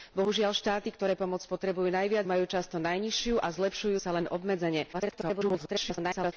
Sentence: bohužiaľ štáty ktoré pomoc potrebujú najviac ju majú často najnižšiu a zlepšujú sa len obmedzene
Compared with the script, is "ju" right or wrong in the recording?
wrong